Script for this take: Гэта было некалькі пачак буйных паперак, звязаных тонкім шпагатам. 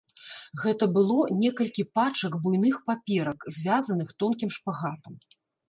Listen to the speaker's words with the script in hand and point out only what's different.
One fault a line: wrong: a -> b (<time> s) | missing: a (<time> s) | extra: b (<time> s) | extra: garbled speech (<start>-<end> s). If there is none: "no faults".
no faults